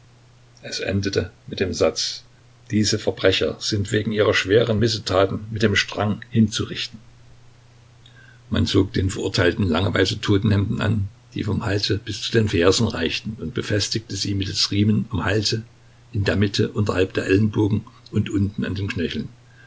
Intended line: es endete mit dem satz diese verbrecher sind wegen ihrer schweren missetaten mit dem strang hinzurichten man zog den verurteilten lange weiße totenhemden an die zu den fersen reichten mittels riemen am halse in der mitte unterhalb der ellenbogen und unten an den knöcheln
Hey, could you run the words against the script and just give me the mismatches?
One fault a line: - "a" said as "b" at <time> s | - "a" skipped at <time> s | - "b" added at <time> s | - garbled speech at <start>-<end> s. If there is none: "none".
- "vom halse bis" added at 11.4 s
- "und befestigte sie" added at 13.4 s